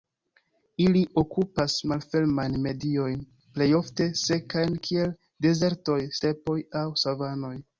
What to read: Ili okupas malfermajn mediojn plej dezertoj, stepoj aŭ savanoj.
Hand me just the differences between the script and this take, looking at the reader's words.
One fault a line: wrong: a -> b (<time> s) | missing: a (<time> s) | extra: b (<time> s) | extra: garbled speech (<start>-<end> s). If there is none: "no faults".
extra: ofte sekajn kiel (3.8 s)